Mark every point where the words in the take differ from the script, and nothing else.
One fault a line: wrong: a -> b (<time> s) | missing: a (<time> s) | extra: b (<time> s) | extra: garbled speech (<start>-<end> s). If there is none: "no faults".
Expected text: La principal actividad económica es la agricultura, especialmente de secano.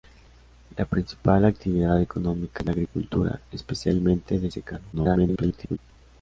extra: garbled speech (4.9-5.8 s)